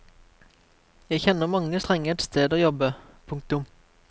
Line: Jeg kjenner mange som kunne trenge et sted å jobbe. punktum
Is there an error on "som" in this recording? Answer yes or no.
yes